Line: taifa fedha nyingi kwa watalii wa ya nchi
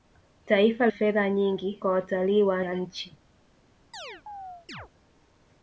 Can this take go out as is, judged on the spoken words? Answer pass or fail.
pass